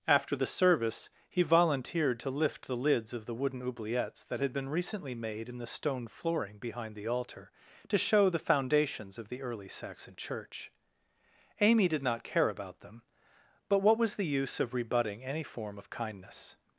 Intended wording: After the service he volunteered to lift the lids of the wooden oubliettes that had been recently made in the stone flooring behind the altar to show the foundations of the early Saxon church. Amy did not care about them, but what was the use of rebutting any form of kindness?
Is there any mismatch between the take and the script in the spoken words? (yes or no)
no